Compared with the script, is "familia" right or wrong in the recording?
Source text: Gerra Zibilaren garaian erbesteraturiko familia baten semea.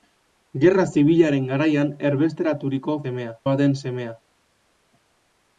wrong